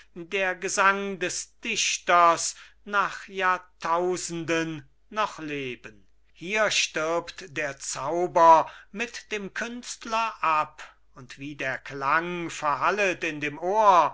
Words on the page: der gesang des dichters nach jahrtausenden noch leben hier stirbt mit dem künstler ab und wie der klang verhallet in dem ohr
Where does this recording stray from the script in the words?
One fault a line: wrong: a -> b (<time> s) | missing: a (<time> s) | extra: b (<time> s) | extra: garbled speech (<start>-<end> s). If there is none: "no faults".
extra: der zauber (7.6 s)